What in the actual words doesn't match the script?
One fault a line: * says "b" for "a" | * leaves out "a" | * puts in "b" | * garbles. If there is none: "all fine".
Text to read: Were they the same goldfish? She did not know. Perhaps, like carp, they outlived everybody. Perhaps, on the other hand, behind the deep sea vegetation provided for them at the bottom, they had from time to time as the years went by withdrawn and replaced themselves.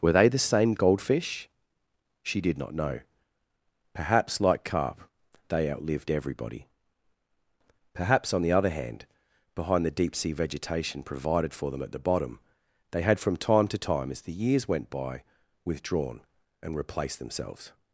all fine